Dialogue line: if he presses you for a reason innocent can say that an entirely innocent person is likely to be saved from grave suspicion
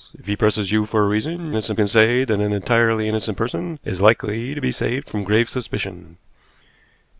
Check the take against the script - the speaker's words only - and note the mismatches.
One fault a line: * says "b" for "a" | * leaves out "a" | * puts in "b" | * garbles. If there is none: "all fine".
all fine